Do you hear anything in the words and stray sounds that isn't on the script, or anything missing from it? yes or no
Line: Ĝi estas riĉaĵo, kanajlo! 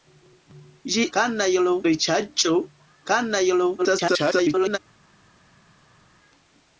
yes